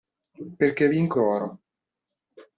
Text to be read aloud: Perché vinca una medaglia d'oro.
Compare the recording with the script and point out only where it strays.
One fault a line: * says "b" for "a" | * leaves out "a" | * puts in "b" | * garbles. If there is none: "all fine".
* leaves out "una medaglia"